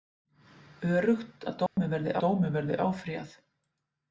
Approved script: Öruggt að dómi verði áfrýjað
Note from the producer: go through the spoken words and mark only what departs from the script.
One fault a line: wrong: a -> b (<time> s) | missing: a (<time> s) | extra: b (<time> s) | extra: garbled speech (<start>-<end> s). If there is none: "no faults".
extra: dómi verði (2.2 s)